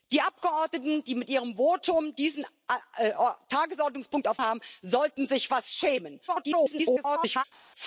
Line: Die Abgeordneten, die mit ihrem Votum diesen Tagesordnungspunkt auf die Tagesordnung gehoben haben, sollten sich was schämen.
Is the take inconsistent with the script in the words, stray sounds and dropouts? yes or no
yes